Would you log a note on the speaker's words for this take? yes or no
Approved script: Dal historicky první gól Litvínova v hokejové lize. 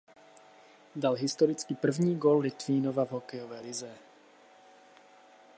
no